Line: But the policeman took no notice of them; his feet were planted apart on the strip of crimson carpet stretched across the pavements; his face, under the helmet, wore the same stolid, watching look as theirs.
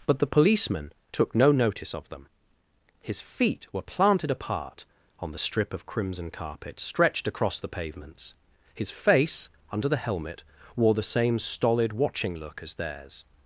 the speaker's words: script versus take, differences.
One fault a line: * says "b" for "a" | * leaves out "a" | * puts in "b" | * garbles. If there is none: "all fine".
all fine